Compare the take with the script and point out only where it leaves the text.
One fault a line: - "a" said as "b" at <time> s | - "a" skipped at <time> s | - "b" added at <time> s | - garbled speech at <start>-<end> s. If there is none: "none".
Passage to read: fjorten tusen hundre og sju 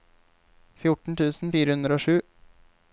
- "fire" added at 1.6 s